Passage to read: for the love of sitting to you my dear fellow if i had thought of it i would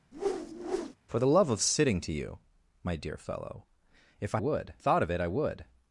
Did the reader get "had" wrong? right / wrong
wrong